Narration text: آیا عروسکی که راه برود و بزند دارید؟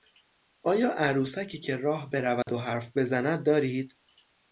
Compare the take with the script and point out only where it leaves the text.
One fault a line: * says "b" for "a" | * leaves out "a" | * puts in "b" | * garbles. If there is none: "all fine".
* puts in "حرف"